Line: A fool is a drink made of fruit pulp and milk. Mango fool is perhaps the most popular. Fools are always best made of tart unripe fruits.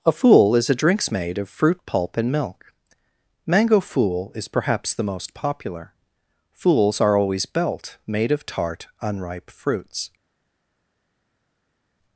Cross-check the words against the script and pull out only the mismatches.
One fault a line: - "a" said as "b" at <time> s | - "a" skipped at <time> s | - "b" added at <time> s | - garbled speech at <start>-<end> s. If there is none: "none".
- "drink" said as "drinks" at 0.7 s
- "best" said as "belt" at 7.5 s